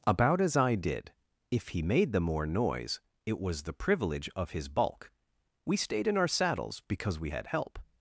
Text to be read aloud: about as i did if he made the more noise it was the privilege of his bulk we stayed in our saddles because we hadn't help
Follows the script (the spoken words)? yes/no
no